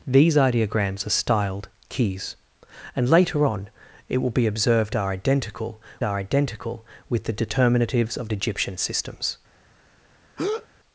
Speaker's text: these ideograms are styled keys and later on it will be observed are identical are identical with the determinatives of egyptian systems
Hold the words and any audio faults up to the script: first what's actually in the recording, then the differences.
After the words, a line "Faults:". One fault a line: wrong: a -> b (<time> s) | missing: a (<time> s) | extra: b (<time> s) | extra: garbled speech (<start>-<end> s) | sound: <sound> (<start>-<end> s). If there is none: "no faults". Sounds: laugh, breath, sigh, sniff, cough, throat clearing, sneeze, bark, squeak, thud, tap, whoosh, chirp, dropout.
these ideograms are styled keys and later on it will be observed are identical are identical with the determinatives of egyptian systems
Faults:
sound: breath (10.4-10.7 s)